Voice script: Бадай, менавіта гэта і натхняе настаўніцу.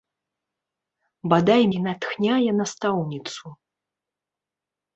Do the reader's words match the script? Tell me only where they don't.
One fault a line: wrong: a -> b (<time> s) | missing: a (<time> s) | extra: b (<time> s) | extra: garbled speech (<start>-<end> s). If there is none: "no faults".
missing: менавіта гэта (1.6 s)